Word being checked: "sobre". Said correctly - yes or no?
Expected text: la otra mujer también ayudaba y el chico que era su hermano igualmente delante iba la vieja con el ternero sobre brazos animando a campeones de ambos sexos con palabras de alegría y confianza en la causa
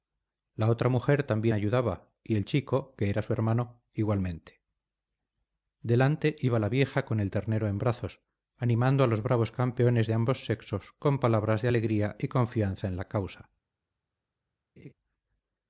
no